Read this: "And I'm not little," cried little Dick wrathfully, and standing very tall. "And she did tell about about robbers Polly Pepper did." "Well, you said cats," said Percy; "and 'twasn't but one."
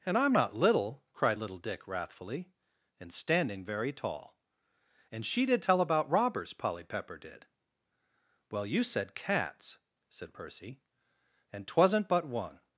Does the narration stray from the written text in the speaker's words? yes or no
yes